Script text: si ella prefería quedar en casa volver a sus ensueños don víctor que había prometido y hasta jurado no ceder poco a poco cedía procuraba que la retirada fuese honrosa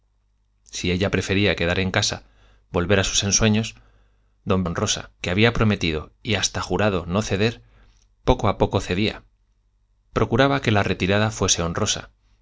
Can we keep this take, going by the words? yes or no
no